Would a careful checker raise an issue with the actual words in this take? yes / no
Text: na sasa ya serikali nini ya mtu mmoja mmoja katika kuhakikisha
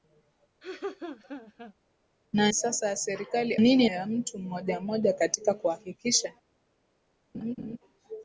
no